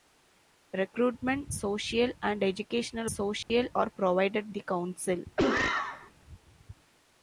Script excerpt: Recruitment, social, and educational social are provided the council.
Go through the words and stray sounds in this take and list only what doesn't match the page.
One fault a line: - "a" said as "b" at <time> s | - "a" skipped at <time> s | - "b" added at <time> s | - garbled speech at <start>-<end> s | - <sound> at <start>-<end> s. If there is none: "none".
- dropout at 3.4-3.5 s
- cough at 5.4-6.1 s